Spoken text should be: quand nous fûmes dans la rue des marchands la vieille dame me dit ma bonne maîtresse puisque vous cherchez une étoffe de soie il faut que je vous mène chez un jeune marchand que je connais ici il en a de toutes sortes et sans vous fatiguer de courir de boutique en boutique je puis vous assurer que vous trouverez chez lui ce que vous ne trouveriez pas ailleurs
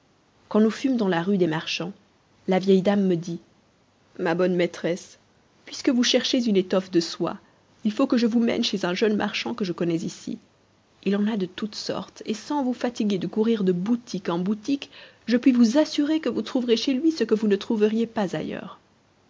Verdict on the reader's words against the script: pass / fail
pass